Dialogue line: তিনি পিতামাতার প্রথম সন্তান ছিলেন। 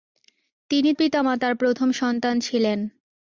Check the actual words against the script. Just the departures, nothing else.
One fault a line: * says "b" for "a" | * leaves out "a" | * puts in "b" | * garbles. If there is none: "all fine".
all fine